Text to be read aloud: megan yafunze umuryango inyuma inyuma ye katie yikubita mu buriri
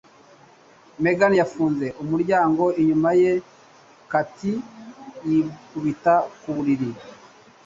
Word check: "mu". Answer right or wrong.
wrong